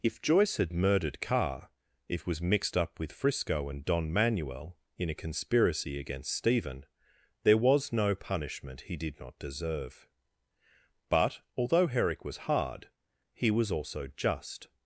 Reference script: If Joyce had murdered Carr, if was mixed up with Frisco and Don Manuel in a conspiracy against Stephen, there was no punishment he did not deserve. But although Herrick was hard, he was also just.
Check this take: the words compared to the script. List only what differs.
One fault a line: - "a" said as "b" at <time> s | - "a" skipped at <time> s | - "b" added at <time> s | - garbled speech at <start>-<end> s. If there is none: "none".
none